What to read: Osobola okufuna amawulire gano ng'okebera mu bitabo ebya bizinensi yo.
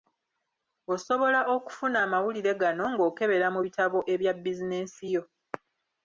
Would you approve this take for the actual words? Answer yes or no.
yes